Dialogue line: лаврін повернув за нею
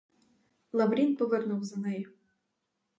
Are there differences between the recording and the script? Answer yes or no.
no